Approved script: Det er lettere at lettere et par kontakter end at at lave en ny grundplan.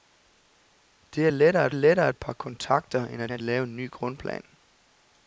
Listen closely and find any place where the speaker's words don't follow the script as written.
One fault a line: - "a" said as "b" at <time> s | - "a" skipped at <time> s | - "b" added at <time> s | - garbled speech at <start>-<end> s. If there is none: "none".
none